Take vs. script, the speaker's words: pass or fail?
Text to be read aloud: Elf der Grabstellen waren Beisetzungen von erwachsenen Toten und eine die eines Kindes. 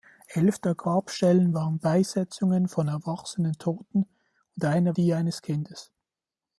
pass